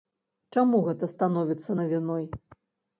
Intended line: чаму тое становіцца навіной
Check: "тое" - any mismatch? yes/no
yes